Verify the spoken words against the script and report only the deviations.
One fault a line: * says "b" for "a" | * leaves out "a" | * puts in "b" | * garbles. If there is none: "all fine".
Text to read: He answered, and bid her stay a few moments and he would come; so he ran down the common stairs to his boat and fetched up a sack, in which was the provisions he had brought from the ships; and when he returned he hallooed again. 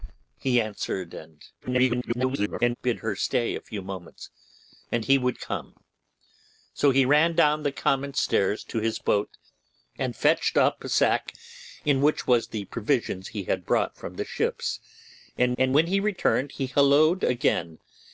* garbles
* puts in "and"